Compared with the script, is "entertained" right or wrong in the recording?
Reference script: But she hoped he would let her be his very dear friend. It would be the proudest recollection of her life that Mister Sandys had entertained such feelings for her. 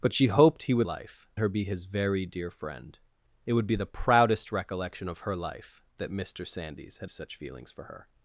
wrong